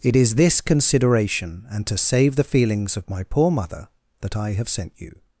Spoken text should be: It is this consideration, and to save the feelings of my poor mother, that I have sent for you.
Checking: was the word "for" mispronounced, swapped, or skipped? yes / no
yes